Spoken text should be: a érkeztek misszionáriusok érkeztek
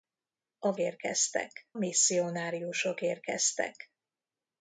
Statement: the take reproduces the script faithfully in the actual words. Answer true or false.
true